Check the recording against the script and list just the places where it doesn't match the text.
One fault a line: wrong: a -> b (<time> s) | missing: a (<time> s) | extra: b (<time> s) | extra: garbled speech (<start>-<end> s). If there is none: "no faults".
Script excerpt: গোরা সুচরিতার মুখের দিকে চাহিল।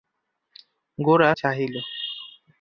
missing: সুচরিতার মুখের দিকে (1.3 s)